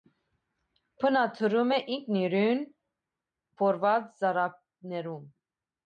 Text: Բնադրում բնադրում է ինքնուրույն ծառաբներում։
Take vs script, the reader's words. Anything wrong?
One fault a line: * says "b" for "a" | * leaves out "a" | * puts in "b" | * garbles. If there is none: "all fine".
* leaves out "բնադրում"
* puts in "փորված"